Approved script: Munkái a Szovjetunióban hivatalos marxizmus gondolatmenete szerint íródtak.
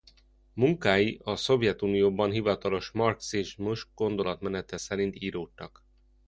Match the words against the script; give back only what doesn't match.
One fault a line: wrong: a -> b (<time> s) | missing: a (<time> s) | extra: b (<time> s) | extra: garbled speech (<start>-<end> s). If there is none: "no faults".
no faults